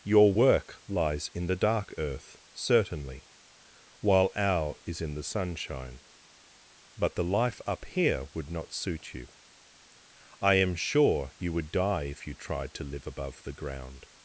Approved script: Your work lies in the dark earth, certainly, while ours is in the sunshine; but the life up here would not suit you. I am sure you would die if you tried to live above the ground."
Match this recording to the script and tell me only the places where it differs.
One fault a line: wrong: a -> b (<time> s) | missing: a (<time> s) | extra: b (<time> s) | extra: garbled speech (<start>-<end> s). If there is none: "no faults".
wrong: ours -> our (4.4 s)